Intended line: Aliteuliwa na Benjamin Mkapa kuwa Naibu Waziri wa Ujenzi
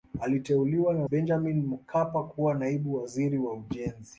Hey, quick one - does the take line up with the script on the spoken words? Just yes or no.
yes